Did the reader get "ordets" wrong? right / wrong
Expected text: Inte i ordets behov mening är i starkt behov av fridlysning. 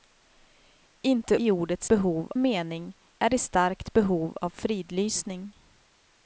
right